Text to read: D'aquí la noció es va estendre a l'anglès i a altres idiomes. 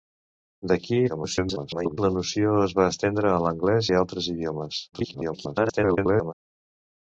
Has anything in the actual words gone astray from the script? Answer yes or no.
yes